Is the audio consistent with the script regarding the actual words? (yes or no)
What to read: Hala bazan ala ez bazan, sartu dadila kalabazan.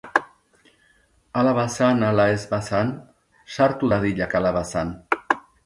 yes